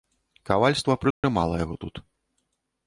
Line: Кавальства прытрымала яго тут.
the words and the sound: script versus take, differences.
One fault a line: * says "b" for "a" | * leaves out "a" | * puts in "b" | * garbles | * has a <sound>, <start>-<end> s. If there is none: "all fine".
* has a dropout, 1.1-1.2 s